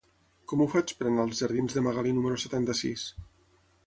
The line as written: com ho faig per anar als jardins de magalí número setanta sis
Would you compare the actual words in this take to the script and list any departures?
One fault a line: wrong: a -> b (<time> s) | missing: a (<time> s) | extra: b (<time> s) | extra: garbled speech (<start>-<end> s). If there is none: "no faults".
no faults